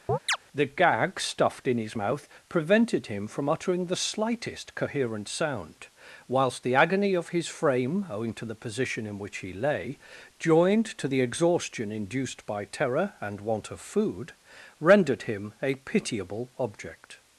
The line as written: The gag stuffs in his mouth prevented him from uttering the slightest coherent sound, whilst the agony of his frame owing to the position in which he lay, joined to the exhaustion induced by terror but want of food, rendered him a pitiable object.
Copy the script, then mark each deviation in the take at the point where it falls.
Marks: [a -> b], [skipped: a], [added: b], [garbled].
The gag [stuffs -> stuffed] in his mouth prevented him from uttering the slightest coherent sound, whilst the agony of his frame owing to the position in which he lay, joined to the exhaustion induced by terror [but -> and] want of food, rendered him a pitiable object.